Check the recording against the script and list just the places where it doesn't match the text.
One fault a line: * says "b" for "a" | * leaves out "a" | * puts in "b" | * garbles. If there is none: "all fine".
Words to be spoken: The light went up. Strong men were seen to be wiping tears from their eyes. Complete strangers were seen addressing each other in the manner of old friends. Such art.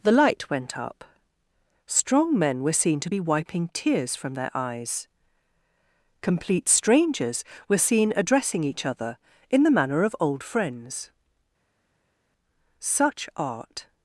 all fine